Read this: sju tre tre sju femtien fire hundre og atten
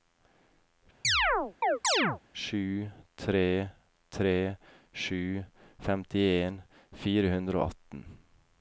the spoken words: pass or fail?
pass